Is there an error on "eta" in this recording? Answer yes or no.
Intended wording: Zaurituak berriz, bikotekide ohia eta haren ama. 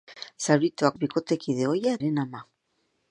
yes